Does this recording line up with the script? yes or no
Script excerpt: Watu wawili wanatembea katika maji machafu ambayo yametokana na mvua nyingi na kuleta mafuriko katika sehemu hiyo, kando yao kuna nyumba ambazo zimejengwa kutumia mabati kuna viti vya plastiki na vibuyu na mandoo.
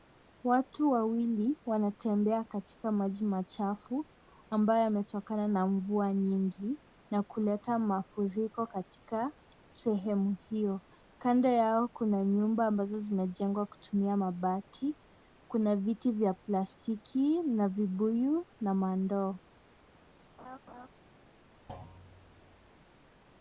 yes